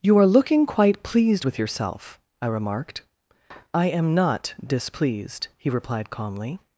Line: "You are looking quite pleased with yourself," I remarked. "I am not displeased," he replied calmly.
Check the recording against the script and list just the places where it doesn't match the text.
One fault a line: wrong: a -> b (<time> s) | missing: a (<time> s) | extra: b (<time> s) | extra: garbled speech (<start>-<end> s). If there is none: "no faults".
no faults